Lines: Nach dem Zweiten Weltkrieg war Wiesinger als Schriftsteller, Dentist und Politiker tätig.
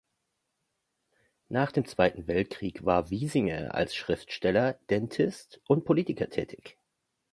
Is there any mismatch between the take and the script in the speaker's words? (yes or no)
no